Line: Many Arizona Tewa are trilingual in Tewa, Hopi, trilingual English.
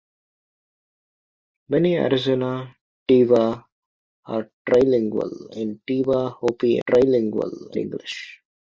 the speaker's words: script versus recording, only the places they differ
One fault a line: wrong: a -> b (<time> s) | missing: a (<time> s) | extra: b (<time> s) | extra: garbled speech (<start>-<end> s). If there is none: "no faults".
no faults